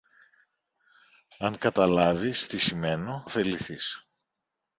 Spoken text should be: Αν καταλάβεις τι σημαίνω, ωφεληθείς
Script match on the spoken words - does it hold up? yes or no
yes